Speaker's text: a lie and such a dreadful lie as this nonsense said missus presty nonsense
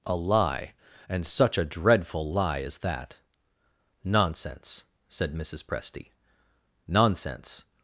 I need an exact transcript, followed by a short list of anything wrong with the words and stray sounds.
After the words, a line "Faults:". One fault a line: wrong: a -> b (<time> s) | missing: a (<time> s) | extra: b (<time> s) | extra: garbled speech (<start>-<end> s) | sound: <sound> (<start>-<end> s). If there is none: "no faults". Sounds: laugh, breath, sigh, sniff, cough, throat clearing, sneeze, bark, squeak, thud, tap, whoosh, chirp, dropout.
a lie and such a dreadful lie as that nonsense said missus presty nonsense
Faults:
wrong: this -> that (2.8 s)